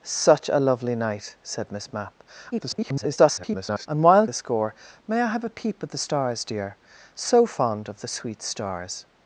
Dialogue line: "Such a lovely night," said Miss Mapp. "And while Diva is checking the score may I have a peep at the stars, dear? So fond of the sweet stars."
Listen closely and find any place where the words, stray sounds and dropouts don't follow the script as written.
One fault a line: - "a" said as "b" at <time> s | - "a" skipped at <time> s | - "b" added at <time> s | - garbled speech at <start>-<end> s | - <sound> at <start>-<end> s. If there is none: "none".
- garbled speech at 2.5-3.9 s
- "Diva is checking" skipped at 4.2 s